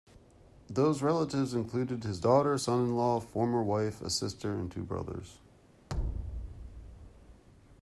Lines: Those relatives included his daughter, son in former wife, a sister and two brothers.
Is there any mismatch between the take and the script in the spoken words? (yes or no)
yes